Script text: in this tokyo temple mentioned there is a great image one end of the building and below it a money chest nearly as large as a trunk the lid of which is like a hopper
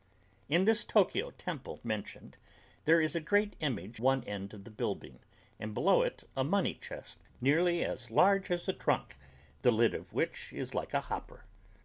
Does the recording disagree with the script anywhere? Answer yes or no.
no